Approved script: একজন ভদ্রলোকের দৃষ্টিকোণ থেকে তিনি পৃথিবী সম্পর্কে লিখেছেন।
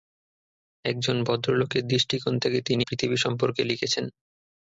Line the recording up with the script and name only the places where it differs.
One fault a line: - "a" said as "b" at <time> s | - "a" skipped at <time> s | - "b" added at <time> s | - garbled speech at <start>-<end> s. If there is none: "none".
none